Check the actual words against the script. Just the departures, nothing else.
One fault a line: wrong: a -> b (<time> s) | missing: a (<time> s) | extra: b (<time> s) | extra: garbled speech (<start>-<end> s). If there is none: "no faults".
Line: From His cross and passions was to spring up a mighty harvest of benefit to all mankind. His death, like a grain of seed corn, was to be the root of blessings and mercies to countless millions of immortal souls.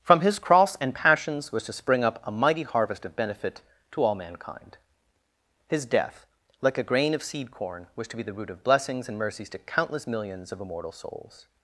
no faults